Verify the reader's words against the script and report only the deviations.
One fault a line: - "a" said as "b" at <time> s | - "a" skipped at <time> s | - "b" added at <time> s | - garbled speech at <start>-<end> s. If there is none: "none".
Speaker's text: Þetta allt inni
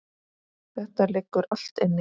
- "liggur" added at 1.1 s